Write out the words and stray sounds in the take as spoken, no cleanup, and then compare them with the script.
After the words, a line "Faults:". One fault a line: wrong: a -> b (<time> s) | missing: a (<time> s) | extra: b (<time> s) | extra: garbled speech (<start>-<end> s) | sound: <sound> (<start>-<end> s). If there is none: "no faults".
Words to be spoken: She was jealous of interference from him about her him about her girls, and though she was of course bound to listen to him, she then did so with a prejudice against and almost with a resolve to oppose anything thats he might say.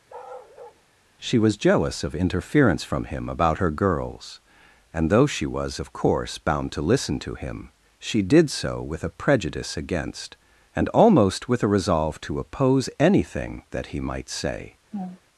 She was jealous of interference from him about her girls, and though she was of course bound to listen to him, she did so with a prejudice against and almost with a resolve to oppose anything that he might say.
Faults:
sound: bark (0.1-0.8 s)
missing: him about her (3.7 s)
missing: then (8.2 s)
wrong: thats -> that (13.7 s)
sound: laugh (14.9-15.2 s)